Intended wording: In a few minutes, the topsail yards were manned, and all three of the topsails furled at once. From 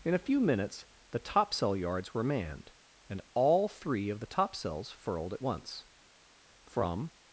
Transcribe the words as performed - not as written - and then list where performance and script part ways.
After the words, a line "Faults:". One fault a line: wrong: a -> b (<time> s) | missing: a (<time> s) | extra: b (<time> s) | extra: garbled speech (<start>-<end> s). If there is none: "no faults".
In a few minutes, the topsail yards were manned, and all three of the topsails furled at once. From
Faults:
no faults